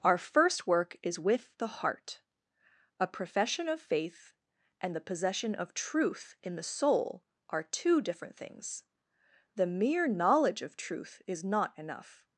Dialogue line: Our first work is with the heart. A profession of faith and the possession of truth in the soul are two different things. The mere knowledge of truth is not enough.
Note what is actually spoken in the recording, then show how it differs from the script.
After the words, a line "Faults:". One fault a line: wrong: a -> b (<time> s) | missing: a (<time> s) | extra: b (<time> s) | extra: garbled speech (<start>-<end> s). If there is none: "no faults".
Our first work is with the heart. A profession of faith and the possession of truth in the soul are two different things. The mere knowledge of truth is not enough.
Faults:
no faults